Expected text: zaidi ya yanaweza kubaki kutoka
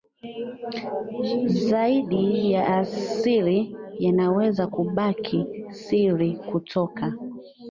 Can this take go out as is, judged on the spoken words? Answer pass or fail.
fail